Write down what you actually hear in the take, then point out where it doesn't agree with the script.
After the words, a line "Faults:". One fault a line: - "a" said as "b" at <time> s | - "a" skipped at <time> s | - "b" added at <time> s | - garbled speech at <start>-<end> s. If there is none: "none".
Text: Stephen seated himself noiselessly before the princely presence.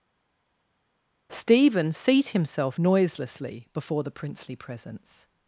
Stephen seat himself noiselessly before the princely presence.
Faults:
- "seated" said as "seat" at 1.9 s